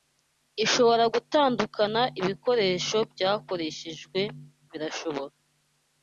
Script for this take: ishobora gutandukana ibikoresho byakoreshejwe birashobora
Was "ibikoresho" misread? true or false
false